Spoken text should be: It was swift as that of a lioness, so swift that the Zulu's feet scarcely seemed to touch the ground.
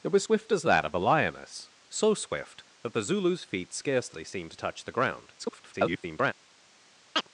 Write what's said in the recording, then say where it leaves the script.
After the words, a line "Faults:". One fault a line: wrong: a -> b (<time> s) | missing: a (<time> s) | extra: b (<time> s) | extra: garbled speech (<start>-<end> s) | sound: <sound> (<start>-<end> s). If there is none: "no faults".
It was swift as that of a lioness, so swift that the Zulu's feet scarcely seemed to touch the ground. [garbled]
Faults:
extra: garbled speech (5.4-6.3 s)
sound: chirp (7.2-7.3 s)